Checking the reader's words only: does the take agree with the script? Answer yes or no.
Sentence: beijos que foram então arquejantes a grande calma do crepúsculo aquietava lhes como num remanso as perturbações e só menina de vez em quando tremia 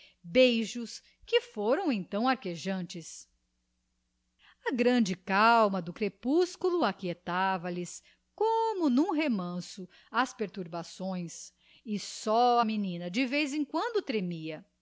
yes